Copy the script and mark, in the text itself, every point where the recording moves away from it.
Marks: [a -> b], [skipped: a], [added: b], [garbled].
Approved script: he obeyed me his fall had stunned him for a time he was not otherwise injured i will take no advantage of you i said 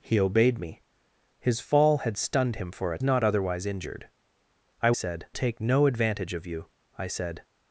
he obeyed me his fall had stunned him for a [skipped: time he was] not otherwise injured i [will -> said] take no advantage of you i said